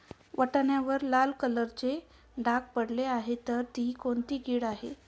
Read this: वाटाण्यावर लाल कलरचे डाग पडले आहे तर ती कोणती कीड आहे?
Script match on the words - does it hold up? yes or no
yes